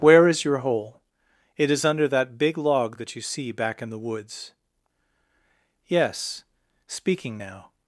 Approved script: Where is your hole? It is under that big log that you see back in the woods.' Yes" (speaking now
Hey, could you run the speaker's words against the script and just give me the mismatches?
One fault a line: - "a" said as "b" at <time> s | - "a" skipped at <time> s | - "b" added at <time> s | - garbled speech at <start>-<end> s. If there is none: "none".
none